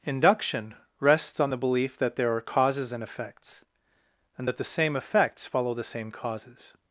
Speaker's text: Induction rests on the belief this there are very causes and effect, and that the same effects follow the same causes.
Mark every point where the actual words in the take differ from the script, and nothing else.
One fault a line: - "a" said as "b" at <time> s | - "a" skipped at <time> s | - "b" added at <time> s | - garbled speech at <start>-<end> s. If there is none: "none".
- "this" said as "that" at 2.0 s
- "very" skipped at 2.4 s
- "effect" said as "effects" at 3.0 s